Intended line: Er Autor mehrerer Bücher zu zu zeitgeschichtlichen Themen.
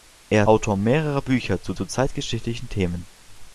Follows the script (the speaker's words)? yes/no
yes